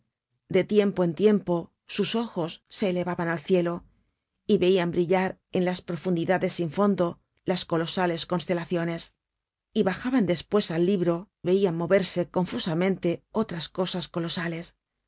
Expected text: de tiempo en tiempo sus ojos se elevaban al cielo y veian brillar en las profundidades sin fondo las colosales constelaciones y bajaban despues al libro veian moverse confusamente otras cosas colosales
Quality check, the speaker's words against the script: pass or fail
pass